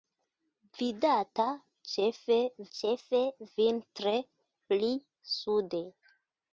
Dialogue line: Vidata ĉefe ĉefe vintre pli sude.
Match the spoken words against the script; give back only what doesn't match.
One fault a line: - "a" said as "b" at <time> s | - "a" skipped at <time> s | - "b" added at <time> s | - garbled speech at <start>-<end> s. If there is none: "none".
none